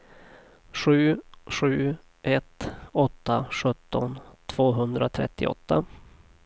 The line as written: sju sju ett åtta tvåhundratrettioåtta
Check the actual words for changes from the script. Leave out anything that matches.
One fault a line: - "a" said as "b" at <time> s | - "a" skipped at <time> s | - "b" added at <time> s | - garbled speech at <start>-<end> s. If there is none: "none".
- "sjutton" added at 3.5 s